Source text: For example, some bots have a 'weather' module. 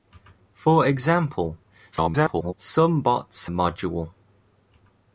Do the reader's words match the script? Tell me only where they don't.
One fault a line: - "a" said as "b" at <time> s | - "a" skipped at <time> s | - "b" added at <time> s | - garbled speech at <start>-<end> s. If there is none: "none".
- garbled speech at 1.9-2.5 s
- "have a weather" skipped at 3.5 s